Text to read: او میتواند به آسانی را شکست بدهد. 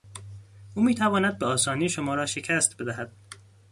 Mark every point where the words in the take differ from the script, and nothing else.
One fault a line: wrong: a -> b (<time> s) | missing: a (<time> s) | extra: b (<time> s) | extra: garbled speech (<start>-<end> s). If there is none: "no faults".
extra: شما (1.9 s)